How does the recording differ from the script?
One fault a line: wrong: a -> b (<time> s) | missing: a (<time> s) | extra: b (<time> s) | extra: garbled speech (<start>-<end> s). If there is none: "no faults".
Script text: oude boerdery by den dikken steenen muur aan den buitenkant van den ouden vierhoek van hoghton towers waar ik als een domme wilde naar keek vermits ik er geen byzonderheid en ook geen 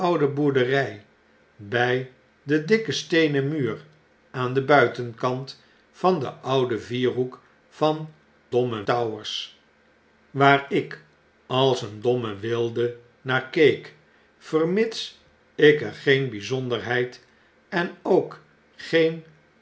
wrong: hoghton -> domme (8.5 s)